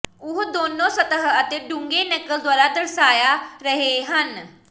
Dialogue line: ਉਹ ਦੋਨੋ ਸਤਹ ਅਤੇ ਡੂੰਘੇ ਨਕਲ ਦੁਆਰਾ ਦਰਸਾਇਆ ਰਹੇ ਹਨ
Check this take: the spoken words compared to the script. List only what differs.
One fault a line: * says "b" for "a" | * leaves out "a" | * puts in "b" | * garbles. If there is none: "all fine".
all fine